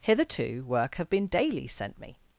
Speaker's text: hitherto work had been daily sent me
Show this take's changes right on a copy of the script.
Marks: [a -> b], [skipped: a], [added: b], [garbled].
hitherto work [had -> have] been daily sent me